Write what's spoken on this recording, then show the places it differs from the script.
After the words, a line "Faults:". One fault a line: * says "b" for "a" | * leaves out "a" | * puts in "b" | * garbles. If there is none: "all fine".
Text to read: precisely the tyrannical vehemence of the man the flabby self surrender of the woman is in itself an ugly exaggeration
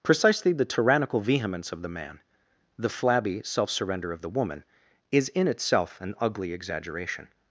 precisely the tyrannical vehemence of the man the flabby self surrender of the woman is in itself an ugly exaggeration
Faults:
all fine